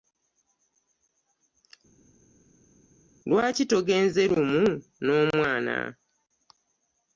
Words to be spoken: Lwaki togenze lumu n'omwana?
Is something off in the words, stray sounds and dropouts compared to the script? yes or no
no